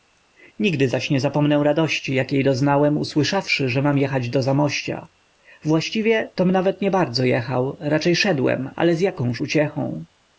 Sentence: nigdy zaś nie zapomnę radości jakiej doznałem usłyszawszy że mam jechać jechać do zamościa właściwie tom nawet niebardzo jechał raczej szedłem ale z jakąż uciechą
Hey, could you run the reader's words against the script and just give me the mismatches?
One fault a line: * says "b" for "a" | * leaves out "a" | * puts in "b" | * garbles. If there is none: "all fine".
* leaves out "jechać"